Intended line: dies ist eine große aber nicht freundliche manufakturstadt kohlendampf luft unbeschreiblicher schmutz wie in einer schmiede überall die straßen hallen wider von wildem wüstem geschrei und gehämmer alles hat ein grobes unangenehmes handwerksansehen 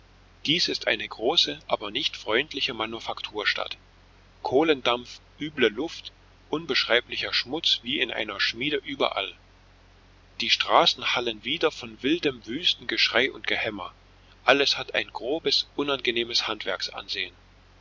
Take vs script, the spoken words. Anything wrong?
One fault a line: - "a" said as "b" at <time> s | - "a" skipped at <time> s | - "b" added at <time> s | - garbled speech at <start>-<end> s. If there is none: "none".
- "üble" added at 5.4 s